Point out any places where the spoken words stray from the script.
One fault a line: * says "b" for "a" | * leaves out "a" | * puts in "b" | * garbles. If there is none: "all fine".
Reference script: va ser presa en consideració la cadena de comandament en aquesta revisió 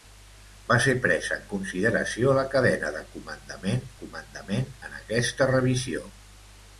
* puts in "comandament"